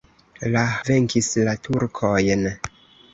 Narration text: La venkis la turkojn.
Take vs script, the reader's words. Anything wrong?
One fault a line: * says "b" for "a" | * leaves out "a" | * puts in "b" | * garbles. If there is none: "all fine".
all fine